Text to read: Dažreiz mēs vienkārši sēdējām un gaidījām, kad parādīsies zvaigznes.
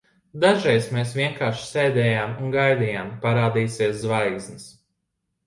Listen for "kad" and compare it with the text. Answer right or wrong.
wrong